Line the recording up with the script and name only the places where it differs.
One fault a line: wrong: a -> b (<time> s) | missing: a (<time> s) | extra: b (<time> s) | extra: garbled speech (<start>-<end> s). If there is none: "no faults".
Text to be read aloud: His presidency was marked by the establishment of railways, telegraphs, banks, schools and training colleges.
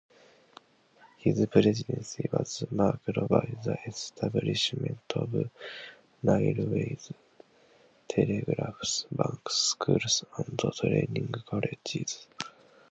no faults